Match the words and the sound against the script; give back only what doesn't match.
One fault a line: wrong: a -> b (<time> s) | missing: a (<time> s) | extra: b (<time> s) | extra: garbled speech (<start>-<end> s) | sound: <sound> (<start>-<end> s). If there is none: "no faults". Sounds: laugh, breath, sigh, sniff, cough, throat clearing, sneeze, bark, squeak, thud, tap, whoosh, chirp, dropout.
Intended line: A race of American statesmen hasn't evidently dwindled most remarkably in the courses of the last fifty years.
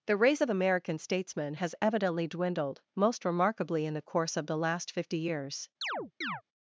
wrong: A -> The (0.1 s)
wrong: hasn't -> has (1.5 s)
wrong: courses -> course (4.0 s)
sound: chirp (5.8-6.4 s)